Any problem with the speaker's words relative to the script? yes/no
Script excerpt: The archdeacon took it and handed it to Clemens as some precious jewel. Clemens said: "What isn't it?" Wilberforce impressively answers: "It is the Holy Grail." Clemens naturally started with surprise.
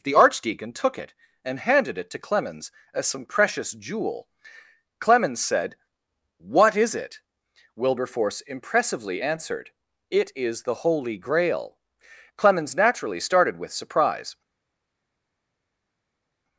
yes